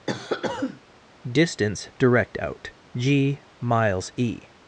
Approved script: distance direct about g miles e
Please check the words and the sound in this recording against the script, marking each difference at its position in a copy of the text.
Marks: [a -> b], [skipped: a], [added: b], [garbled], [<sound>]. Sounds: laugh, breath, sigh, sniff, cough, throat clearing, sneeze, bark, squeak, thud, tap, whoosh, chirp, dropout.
[cough] distance direct [about -> out] g miles e